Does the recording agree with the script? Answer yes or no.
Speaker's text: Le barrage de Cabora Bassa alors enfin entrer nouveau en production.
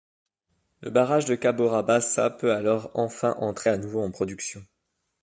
no